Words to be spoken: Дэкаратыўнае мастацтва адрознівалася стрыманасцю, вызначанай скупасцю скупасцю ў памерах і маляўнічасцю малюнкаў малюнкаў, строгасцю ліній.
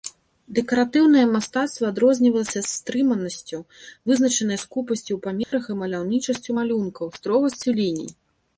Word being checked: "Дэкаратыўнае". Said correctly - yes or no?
yes